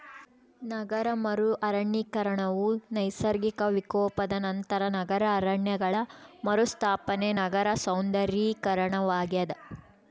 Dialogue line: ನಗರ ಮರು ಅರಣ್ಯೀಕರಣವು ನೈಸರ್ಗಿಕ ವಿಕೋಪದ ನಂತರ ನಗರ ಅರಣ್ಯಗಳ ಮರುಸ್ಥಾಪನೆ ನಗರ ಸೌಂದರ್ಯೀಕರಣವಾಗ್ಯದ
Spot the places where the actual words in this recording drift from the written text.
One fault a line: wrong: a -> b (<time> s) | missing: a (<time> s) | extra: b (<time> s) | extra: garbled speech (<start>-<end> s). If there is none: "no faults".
no faults